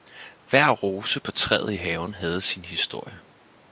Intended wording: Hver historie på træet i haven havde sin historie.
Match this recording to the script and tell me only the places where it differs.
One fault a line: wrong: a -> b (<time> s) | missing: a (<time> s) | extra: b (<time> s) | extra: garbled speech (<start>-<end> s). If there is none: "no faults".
wrong: historie -> rose (0.7 s)